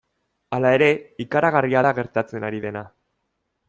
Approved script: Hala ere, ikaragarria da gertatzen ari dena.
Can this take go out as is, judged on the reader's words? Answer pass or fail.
pass